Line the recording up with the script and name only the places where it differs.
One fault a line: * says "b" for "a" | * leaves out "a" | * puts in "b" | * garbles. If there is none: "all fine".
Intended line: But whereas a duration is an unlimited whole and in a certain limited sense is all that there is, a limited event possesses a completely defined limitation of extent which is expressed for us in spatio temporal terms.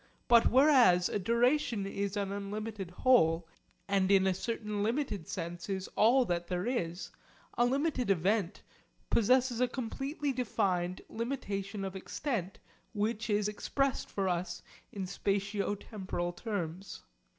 all fine